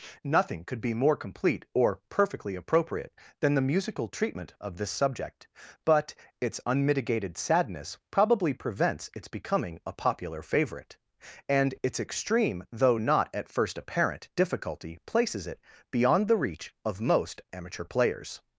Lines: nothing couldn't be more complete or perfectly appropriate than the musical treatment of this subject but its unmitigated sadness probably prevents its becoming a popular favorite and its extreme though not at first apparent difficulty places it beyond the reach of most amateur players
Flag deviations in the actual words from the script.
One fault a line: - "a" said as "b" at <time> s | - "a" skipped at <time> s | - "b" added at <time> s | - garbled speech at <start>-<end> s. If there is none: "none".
- "couldn't" said as "could" at 0.7 s